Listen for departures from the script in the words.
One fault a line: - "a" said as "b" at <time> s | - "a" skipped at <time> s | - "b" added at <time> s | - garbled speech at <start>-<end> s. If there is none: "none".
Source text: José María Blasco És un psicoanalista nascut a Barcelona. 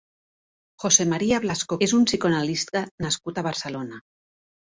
none